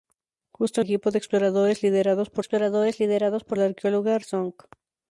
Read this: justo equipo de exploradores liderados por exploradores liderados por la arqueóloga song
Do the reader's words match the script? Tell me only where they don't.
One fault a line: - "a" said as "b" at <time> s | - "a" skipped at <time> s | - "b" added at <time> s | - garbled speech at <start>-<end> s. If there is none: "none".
none